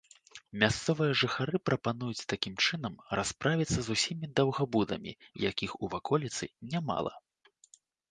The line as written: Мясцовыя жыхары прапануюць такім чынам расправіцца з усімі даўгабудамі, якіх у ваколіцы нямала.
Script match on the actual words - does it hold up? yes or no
yes